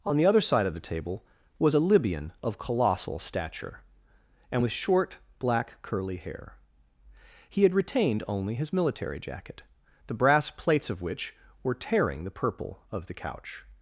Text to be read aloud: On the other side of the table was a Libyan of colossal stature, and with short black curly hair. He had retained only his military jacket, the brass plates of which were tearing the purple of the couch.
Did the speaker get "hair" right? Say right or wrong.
right